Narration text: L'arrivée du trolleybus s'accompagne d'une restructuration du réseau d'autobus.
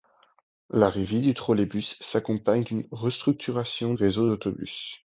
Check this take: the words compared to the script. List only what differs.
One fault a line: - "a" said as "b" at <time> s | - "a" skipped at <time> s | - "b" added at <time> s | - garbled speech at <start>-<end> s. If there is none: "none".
- "du" skipped at 3.9 s